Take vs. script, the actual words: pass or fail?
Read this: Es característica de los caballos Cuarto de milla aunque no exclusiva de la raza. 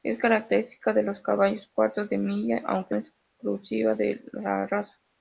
fail